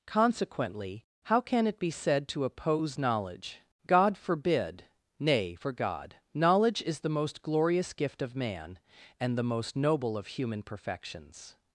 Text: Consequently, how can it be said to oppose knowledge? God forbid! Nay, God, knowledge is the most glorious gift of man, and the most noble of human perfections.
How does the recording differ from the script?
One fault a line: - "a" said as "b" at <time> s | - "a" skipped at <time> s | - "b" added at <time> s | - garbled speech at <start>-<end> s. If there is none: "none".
- "for" added at 5.5 s